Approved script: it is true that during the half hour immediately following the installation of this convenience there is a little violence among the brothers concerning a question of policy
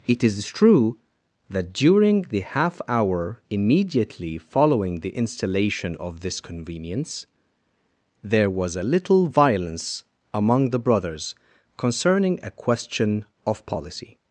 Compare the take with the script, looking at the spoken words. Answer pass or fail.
fail